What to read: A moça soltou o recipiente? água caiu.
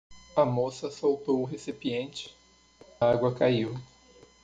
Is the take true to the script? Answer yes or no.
yes